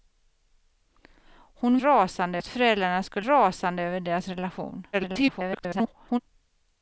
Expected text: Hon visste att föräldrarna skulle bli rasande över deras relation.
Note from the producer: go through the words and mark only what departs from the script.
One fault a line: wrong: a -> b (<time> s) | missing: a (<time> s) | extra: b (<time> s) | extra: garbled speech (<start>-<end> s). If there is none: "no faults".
wrong: visste -> rasande (1.8 s)
missing: bli (3.3 s)
extra: garbled speech (4.9-6.2 s)